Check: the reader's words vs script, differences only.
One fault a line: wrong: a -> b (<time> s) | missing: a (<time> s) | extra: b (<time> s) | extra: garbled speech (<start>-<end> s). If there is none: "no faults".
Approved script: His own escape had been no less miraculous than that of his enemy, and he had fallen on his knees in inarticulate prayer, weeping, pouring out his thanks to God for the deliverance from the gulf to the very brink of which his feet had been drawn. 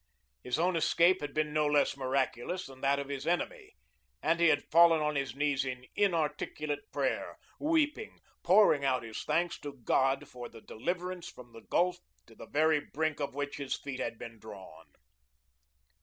no faults